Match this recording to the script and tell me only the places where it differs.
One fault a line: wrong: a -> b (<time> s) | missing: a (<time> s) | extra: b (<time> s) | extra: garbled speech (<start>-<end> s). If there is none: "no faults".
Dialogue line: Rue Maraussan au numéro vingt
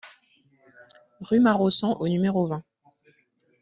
no faults